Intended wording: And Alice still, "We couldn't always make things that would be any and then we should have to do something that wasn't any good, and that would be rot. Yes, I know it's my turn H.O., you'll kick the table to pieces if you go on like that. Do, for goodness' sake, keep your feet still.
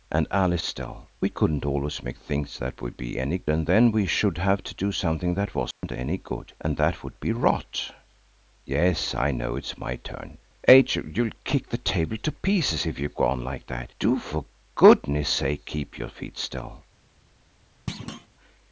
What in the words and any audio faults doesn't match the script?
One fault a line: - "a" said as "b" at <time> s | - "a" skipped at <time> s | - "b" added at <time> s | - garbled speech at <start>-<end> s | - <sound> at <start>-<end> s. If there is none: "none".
- dropout at 5.7-5.8 s
- thud at 17.9-18.3 s